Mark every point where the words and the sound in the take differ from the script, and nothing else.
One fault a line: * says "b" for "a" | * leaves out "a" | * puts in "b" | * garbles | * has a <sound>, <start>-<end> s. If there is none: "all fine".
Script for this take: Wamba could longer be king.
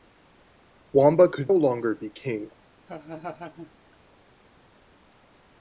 * has a laugh, 2.9-3.7 s